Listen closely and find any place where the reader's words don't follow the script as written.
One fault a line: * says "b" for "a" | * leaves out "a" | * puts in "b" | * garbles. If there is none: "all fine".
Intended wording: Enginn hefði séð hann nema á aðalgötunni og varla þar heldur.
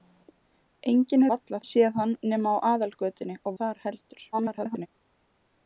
* says "varla" for "hefði"
* leaves out "varla"
* garbles